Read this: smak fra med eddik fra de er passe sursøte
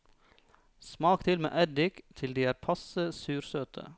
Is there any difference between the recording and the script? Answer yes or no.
yes